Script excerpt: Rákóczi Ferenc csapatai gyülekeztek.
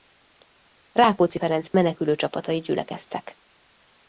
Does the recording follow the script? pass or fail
fail